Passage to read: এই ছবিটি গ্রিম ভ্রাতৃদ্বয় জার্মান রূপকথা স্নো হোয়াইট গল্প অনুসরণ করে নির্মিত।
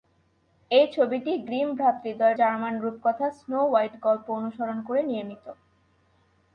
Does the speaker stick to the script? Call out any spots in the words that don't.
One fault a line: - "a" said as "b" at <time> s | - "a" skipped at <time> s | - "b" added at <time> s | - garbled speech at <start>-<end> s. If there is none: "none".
none